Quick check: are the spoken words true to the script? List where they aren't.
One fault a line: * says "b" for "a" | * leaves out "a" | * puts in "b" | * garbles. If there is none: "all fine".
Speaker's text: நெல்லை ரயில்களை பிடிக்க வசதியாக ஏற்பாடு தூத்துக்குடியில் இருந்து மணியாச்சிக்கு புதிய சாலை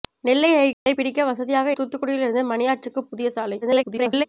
* leaves out "ஏற்பாடு"
* garbles